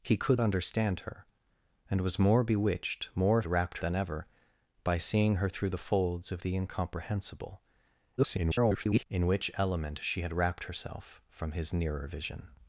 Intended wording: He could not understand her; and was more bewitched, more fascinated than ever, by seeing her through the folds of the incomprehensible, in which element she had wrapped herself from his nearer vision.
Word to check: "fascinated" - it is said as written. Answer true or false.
false